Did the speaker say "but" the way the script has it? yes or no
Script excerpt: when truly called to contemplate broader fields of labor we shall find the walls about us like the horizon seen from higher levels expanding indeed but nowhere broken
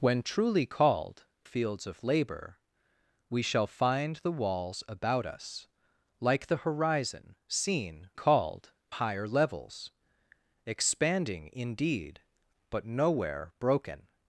yes